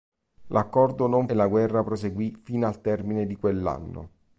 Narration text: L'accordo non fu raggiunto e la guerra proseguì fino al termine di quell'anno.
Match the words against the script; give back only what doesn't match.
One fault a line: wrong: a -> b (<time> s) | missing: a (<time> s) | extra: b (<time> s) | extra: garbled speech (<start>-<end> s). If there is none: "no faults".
missing: fu raggiunto (1.3 s)